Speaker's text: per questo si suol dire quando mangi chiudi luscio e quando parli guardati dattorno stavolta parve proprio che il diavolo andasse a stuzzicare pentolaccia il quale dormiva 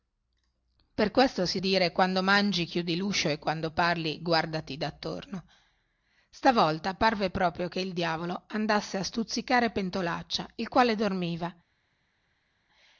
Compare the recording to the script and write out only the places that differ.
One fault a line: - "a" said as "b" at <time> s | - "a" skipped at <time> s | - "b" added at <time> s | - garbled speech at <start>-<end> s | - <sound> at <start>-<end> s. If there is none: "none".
- "suol" skipped at 1.6 s